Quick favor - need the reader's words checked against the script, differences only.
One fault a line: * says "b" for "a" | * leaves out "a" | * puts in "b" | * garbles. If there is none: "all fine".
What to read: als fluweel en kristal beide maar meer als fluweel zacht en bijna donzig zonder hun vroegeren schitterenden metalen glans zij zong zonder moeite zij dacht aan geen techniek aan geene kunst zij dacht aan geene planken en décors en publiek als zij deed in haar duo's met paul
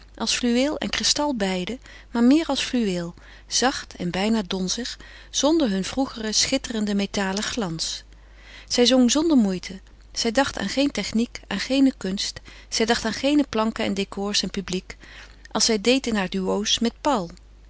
all fine